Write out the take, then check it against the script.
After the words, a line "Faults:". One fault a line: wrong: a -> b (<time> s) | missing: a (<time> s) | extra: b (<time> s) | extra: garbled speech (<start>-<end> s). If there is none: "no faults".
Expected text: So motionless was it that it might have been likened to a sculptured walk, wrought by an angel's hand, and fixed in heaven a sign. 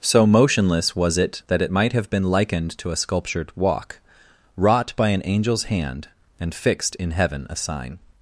So motionless was it that it might have been likened to a sculptured walk, wrought by an angel's hand, and fixed in heaven a sign.
Faults:
no faults